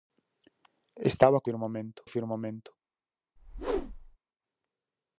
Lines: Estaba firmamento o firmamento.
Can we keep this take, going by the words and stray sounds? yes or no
no